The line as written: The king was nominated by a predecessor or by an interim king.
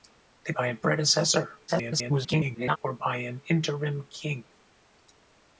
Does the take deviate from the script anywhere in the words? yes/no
yes